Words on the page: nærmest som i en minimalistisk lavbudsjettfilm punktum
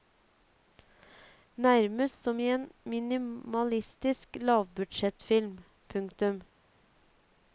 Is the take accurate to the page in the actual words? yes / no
yes